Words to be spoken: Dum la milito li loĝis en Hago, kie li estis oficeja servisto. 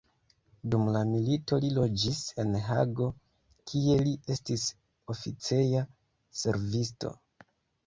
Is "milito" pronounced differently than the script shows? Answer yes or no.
no